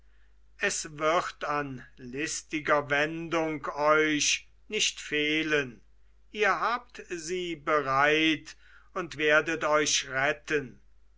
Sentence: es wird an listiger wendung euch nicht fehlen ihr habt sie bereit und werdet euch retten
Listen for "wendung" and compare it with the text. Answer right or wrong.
right